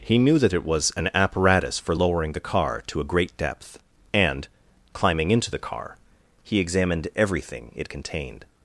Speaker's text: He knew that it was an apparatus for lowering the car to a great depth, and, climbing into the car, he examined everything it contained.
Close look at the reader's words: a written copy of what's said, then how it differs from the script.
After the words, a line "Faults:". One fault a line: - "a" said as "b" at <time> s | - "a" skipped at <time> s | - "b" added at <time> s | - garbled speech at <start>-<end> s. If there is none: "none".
He knew that it was an apparatus for lowering the car to a great depth, and, climbing into the car, he examined everything it contained.
Faults:
none